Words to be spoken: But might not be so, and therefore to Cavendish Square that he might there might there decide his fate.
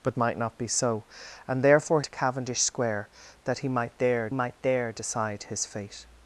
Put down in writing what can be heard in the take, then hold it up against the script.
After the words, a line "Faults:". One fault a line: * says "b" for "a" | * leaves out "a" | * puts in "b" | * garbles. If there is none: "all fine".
But might not be so, and therefore to Cavendish Square that he might there might there decide his fate.
Faults:
all fine